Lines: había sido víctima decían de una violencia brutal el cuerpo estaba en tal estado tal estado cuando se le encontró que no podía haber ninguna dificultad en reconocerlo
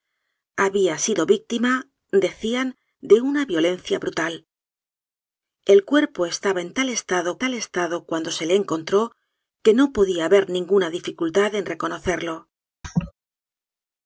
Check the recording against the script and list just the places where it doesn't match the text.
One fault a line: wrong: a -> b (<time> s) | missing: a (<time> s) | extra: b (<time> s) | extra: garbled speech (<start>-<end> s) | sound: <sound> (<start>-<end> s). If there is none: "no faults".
sound: laugh (12.8-13.1 s)